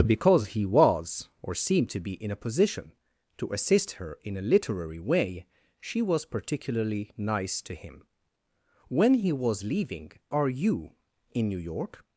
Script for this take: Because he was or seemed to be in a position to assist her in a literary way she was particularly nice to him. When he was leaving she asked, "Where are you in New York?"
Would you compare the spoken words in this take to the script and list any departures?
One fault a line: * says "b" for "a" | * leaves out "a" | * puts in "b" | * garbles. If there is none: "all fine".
* leaves out "she asked Where"